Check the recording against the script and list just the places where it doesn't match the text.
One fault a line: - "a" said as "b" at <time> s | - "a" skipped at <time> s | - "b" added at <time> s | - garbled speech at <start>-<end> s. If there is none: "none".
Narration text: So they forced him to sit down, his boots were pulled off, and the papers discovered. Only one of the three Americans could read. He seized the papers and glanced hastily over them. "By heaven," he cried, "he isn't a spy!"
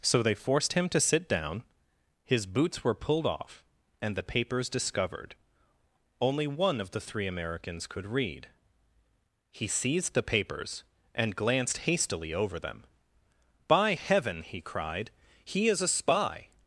- "isn't" said as "is" at 15.7 s